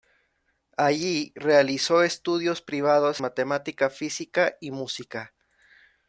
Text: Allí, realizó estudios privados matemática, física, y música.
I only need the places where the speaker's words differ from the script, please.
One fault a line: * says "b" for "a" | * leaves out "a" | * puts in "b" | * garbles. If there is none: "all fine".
all fine